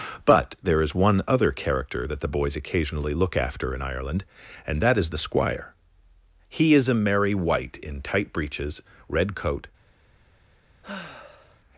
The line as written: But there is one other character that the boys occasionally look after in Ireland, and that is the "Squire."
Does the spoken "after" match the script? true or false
true